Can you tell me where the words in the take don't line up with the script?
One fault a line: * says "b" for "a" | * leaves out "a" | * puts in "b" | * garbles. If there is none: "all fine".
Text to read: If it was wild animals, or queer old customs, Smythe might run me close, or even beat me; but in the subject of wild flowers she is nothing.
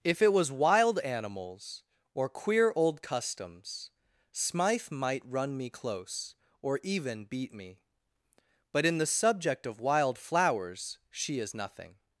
all fine